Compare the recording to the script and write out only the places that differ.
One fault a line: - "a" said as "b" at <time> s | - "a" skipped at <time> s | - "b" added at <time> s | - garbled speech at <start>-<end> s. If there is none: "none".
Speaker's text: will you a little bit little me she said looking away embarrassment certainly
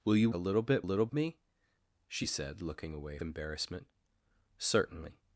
none